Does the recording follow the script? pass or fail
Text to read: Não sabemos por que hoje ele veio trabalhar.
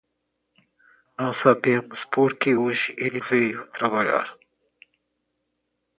pass